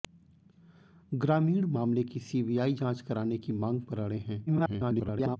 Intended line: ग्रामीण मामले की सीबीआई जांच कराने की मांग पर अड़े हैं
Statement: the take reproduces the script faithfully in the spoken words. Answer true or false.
false